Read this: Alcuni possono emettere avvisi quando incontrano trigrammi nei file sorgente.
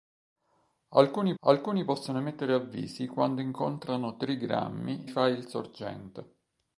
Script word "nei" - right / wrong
wrong